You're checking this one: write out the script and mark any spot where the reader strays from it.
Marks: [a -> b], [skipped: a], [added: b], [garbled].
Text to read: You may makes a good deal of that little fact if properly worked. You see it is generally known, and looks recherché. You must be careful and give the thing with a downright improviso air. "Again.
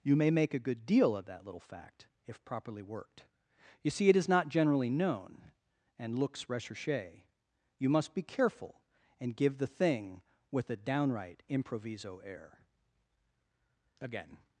You may [makes -> make] a good deal of that little fact if properly worked. You see it is [added: not] generally known, and looks recherché. You must be careful and give the thing with a downright improviso air. "Again.